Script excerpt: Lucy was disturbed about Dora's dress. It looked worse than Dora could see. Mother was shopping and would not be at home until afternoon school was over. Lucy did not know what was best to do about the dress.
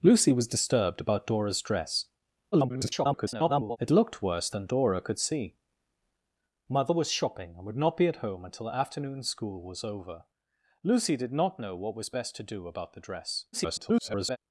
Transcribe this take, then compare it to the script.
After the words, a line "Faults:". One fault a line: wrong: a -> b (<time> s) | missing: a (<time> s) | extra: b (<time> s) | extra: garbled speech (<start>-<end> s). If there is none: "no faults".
Lucy was disturbed about Dora's dress. [garbled] It looked worse than Dora could see. Mother was shopping and would not be at home until afternoon school was over. Lucy did not know what was best to do about the dress. [garbled]
Faults:
extra: garbled speech (2.5-3.8 s)
extra: garbled speech (13.5-14.4 s)